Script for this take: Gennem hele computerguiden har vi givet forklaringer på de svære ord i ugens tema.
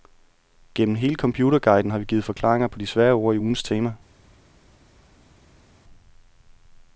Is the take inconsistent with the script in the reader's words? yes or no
no